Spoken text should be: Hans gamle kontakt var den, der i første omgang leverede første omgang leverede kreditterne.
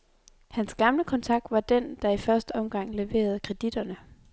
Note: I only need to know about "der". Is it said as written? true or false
true